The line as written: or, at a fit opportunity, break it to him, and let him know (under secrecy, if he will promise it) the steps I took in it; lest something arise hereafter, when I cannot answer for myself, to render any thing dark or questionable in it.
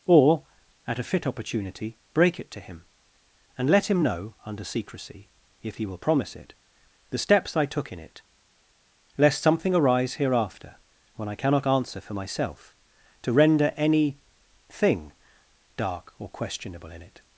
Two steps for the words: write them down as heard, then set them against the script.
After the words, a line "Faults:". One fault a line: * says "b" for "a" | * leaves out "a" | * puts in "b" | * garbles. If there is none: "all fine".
or, at a fit opportunity, break it to him, and let him know (under secrecy, if he will promise it) the steps I took in it; lest something arise hereafter, when I cannot answer for myself, to render any thing dark or questionable in it.
Faults:
all fine